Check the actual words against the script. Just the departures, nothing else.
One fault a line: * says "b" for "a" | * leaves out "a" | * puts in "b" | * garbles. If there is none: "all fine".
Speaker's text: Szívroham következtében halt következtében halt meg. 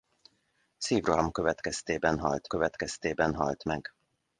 all fine